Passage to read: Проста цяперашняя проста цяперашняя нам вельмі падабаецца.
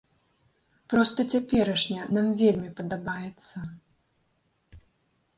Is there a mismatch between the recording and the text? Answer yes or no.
yes